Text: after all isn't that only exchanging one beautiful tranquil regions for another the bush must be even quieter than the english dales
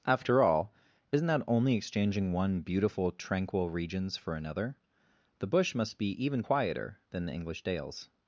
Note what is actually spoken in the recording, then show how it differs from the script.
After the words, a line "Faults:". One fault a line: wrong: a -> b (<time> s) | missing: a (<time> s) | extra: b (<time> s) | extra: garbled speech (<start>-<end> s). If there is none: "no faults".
after all isn't that only exchanging one beautiful tranquil regions for another the bush must be even quieter than the english dales
Faults:
no faults